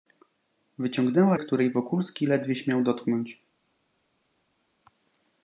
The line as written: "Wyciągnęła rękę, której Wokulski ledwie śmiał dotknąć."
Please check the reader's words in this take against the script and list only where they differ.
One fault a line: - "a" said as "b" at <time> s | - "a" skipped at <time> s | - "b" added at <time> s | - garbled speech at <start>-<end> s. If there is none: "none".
- "rękę" skipped at 1.4 s